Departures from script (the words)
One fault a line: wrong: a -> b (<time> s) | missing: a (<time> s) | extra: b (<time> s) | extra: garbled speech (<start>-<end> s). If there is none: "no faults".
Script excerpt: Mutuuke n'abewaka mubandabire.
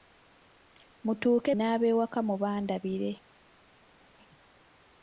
no faults